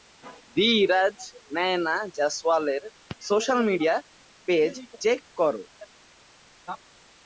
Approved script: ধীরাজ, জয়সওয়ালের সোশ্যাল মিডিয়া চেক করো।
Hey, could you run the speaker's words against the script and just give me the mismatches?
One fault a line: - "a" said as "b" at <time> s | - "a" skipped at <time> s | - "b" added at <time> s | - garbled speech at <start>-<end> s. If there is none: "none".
- "নায়না" added at 1.6 s
- "পেজ" added at 4.5 s